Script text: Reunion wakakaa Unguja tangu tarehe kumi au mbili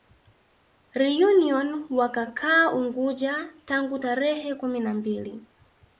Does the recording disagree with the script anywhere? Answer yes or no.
yes